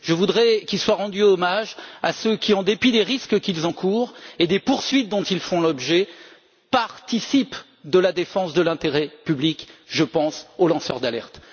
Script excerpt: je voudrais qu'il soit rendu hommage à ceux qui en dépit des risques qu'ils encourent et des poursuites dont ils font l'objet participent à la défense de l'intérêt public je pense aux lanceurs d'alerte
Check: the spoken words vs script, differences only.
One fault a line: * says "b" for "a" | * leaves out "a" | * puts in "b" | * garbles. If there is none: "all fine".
all fine